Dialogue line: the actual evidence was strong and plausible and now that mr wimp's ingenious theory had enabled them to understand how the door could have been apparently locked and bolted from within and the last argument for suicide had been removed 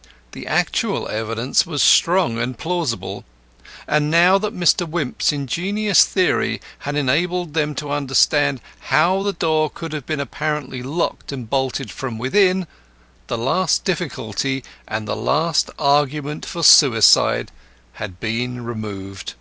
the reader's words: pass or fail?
fail